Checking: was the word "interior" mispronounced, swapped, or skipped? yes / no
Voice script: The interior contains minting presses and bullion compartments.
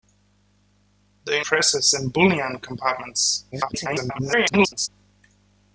yes